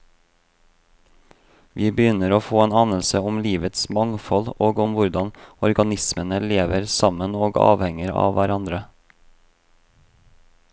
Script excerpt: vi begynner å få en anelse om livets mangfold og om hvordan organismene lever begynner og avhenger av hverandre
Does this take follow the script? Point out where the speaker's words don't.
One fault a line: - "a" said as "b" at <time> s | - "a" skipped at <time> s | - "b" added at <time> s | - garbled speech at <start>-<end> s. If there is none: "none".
- "begynner" said as "sammen" at 7.0 s